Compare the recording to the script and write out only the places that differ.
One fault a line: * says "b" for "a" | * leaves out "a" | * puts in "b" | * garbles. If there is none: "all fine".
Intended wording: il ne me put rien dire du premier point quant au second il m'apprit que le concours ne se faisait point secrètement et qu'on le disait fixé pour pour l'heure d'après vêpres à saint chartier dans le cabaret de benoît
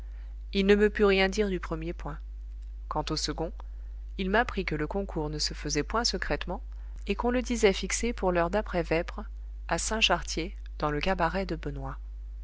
* leaves out "pour"